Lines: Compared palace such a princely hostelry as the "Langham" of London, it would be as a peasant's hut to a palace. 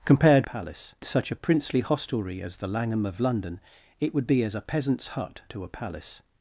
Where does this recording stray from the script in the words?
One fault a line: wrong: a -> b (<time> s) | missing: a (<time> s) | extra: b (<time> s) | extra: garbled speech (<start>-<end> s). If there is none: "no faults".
no faults